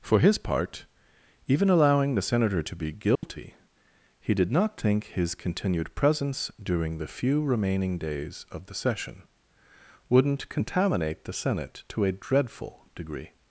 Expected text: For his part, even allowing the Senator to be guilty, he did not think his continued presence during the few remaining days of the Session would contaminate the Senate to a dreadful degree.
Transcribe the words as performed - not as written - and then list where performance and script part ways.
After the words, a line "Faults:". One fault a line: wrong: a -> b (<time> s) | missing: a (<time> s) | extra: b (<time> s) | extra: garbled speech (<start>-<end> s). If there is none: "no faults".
For his part, even allowing the Senator to be guilty, he did not think his continued presence during the few remaining days of the Session wouldn't contaminate the Senate to a dreadful degree.
Faults:
wrong: would -> wouldn't (10.1 s)